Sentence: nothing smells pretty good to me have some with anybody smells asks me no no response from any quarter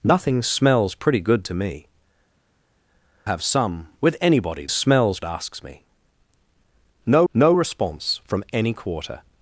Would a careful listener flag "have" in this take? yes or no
no